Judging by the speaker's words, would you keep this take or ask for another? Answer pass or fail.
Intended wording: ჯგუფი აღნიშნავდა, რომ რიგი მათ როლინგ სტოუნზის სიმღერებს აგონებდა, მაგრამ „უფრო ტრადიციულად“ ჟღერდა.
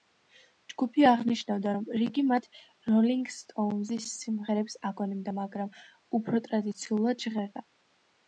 pass